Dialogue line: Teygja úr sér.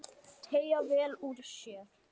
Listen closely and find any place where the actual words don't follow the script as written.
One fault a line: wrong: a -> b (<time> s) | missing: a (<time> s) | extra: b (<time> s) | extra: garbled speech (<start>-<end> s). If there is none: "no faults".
extra: vel (0.9 s)